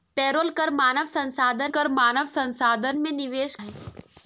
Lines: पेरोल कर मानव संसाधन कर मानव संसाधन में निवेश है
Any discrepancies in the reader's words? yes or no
no